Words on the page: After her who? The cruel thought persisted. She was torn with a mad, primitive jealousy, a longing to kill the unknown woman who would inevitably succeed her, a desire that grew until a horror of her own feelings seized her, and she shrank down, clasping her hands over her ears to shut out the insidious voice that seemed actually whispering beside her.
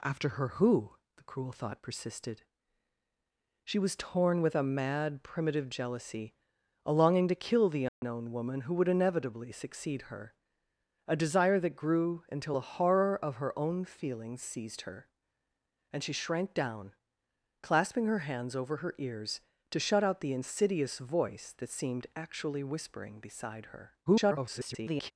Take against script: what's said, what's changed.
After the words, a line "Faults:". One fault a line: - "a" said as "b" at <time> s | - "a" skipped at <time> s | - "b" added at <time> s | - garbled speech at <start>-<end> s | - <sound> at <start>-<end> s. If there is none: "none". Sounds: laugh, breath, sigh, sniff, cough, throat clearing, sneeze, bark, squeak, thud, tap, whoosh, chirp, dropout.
After her who? The cruel thought persisted. She was torn with a mad, primitive jealousy, a longing to kill the unknown woman who would inevitably succeed her, a desire that grew until a horror of her own feelings seized her, and she shrank down, clasping her hands over her ears to shut out the insidious voice that seemed actually whispering beside her. [garbled]
Faults:
- dropout at 7.9-8.0 s
- garbled speech at 24.1-25.1 s